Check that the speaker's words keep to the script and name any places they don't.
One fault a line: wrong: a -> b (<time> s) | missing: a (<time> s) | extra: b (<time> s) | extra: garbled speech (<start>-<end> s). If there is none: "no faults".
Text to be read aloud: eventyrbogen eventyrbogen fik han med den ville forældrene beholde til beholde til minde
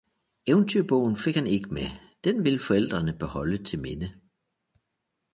missing: eventyrbogen (1.2 s)
extra: ikke (1.5 s)
missing: beholde til (3.8 s)